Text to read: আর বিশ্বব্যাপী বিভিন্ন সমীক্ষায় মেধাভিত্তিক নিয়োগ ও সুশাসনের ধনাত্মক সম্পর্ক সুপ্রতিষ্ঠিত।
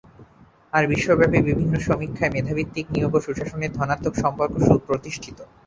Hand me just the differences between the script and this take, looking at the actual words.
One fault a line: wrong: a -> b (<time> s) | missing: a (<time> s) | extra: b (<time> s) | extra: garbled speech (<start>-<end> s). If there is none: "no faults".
no faults